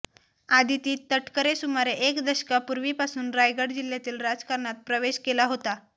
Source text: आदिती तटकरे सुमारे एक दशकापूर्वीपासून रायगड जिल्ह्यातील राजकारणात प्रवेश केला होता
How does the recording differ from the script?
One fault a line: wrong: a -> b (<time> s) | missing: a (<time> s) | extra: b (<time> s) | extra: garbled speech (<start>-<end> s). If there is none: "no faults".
no faults